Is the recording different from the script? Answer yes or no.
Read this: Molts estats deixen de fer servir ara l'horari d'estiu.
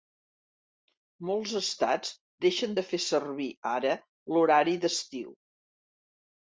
no